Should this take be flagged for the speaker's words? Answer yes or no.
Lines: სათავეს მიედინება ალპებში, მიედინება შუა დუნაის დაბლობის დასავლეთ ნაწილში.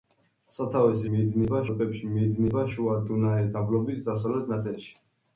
no